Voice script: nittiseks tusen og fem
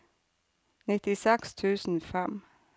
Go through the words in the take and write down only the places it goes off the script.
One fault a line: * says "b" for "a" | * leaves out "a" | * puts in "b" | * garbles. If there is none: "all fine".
all fine